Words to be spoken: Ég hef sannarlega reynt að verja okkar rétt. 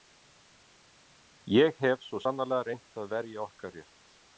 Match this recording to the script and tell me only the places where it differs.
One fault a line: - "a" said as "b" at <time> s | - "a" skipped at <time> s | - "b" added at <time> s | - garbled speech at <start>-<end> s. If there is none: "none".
- "svo" added at 2.1 s